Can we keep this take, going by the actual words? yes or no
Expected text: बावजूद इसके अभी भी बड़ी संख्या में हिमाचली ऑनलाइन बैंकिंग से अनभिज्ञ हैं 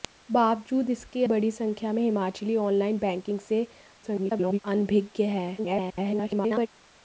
no